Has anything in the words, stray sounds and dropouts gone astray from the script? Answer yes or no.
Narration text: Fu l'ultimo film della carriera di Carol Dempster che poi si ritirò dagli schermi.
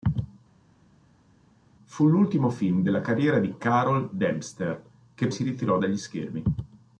yes